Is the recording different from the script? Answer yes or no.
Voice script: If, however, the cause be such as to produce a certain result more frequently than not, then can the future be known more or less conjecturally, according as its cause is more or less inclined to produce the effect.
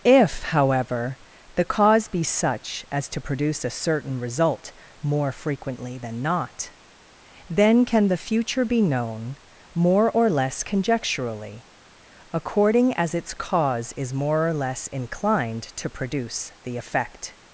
no